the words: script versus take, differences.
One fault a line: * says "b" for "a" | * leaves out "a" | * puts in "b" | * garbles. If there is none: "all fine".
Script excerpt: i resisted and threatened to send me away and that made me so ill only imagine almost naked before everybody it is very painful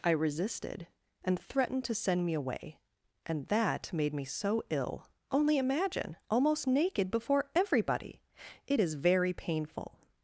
all fine